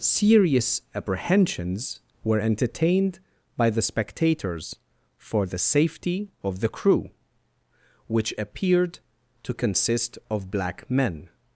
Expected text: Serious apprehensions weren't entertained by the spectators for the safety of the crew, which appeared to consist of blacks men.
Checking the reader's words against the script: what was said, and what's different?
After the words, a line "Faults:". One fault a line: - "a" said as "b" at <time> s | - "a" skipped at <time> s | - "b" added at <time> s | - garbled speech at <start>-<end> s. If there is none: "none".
Serious apprehensions were entertained by the spectators for the safety of the crew, which appeared to consist of black men.
Faults:
- "weren't" said as "were" at 2.2 s
- "blacks" said as "black" at 10.5 s